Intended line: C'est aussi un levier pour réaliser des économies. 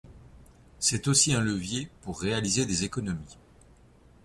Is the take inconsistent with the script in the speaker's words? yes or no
no